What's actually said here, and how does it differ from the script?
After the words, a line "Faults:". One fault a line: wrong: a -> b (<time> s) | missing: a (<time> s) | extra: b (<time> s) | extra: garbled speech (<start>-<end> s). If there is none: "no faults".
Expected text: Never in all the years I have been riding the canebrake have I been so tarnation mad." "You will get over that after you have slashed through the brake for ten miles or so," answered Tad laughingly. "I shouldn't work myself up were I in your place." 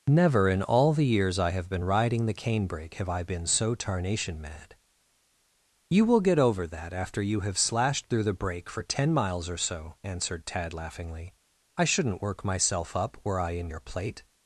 Never in all the years I have been riding the canebrake have I been so tarnation mad." "You will get over that after you have slashed through the brake for ten miles or so," answered Tad laughingly. "I shouldn't work myself up were I in your plate."
Faults:
wrong: place -> plate (13.8 s)